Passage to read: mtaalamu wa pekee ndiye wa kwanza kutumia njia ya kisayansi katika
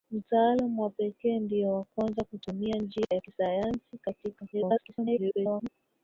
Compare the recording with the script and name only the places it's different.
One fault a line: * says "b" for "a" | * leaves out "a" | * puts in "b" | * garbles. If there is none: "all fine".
* garbles